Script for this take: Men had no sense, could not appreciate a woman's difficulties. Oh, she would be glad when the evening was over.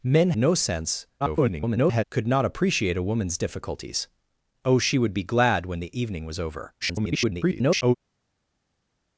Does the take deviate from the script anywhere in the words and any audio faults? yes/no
yes